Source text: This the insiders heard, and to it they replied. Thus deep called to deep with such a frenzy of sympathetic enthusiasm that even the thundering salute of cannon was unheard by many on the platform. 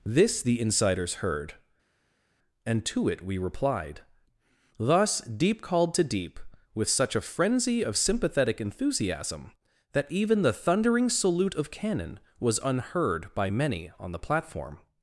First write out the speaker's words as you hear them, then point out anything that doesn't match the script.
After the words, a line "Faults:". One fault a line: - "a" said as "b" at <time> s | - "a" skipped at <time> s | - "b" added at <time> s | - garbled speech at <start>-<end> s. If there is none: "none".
This the insiders heard, and to it we replied. Thus deep called to deep with such a frenzy of sympathetic enthusiasm that even the thundering salute of cannon was unheard by many on the platform.
Faults:
- "they" said as "we" at 3.2 s